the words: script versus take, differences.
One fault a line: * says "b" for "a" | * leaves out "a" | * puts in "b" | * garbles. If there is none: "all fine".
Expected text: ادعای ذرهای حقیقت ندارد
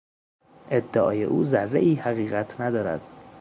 * puts in "او"